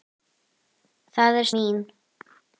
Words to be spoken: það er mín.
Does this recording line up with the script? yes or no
yes